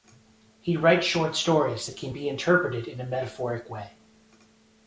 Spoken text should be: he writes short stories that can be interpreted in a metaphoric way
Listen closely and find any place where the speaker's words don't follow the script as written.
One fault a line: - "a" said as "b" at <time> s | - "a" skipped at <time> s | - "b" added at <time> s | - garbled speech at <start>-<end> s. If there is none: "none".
none